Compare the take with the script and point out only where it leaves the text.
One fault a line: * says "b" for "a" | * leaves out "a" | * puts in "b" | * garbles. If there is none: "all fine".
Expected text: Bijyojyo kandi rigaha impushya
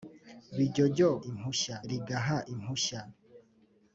* says "impushya" for "kandi"